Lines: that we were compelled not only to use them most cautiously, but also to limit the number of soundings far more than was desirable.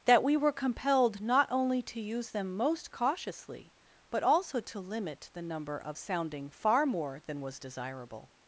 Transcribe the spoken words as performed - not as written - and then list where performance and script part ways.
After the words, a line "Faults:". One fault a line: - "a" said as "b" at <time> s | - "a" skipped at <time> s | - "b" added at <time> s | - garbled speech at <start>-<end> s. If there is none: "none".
that we were compelled not only to use them most cautiously, but also to limit the number of sounding far more than was desirable.
Faults:
- "soundings" said as "sounding" at 6.0 s